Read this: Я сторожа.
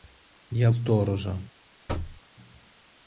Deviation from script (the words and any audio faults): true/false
true